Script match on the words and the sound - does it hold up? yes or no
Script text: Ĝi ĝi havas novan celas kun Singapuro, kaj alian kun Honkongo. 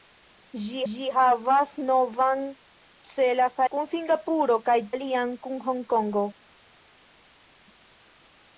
yes